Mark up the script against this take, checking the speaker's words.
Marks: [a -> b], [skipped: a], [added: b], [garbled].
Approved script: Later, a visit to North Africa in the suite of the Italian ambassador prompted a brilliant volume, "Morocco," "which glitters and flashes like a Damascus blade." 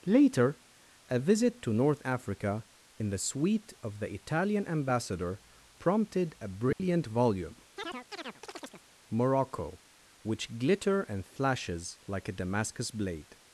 Later, a visit to North Africa in the suite of the Italian ambassador prompted a brilliant volume, "Morocco," "which [glitters -> glitter] and flashes like a Damascus blade."